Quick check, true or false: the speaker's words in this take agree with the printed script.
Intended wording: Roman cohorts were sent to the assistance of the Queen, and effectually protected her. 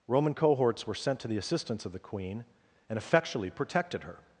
true